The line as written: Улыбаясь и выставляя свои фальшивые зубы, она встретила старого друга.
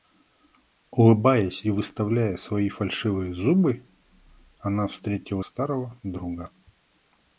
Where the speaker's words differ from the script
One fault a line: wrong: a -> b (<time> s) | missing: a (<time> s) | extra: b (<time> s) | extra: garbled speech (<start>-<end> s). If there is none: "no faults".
no faults